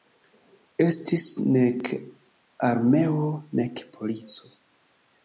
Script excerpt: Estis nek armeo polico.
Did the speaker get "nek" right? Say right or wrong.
right